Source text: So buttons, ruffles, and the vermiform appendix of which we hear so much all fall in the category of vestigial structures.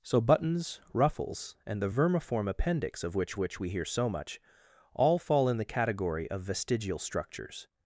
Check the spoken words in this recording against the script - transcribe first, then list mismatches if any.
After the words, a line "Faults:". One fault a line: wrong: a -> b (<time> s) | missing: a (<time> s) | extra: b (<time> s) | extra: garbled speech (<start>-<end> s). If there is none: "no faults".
So buttons, ruffles, and the vermiform appendix of which which we hear so much all fall in the category of vestigial structures.
Faults:
extra: which (3.4 s)